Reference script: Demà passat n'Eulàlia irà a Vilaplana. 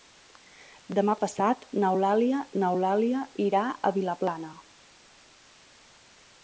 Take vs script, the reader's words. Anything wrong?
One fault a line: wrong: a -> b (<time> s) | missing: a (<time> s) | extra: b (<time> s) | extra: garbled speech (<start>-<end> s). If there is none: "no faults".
extra: n'Eulàlia (2.6 s)